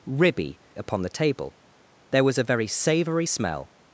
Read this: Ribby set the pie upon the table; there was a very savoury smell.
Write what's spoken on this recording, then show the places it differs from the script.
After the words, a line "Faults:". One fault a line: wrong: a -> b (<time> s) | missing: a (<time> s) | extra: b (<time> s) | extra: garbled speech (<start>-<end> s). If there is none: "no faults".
Ribby upon the table; there was a very savoury smell.
Faults:
missing: set the pie (0.6 s)